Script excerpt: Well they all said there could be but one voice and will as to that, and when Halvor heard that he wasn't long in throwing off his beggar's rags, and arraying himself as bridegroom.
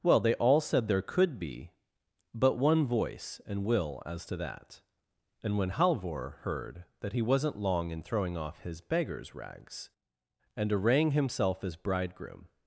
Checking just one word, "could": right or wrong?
right